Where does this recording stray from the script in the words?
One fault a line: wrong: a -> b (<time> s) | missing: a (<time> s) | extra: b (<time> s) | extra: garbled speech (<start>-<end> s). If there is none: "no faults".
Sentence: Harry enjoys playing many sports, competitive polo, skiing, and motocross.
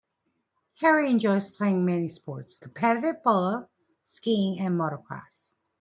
no faults